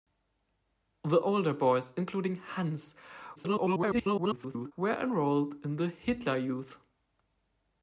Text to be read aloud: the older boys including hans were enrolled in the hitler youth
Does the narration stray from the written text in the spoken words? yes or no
yes